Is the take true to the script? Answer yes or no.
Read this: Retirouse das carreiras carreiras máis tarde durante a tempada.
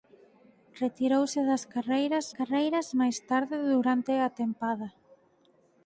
yes